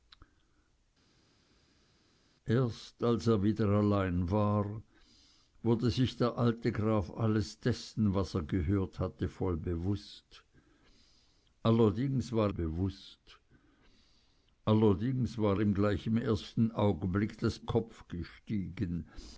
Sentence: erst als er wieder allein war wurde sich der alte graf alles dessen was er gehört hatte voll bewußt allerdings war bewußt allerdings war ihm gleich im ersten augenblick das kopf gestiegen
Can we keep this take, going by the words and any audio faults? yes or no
yes